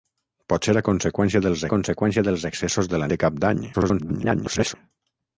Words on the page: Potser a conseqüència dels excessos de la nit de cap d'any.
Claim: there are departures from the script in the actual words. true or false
true